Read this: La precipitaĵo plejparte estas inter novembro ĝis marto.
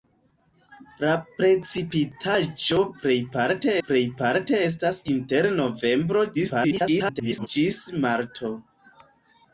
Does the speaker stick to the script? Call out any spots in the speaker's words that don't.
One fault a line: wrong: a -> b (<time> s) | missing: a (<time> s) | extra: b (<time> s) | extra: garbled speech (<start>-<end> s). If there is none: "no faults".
extra: plejparte (3.9 s)
extra: garbled speech (6.3-7.5 s)